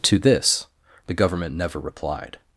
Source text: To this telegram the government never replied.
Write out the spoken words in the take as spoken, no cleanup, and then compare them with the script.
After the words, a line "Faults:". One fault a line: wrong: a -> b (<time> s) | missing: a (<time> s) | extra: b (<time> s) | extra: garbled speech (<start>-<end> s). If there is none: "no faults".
To this the government never replied.
Faults:
missing: telegram (0.7 s)